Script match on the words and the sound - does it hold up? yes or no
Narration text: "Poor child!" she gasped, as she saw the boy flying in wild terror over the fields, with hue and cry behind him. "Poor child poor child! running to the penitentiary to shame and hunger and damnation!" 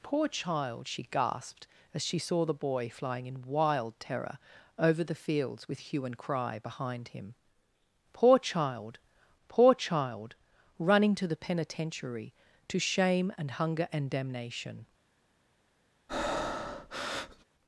no